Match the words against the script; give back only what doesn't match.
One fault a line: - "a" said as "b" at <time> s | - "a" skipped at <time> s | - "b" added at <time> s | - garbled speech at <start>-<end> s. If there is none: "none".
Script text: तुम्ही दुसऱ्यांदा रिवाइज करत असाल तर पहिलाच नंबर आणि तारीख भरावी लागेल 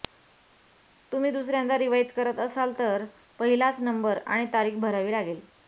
none